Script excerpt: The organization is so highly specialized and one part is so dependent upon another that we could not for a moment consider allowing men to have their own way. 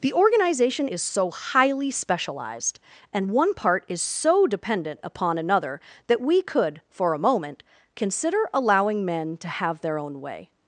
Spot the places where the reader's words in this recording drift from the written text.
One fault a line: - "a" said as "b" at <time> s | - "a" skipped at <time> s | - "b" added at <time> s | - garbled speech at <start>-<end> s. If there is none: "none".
- "not" skipped at 6.8 s